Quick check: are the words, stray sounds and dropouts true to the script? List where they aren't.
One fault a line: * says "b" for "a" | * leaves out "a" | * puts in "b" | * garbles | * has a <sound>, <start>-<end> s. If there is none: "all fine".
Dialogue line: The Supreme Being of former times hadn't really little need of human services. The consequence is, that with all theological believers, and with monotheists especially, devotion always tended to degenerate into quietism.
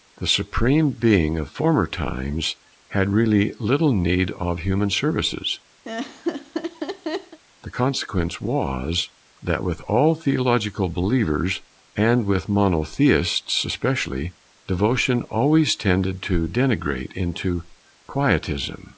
* says "had" for "hadn't"
* has a laugh, 5.8-7.4 s
* says "was" for "is"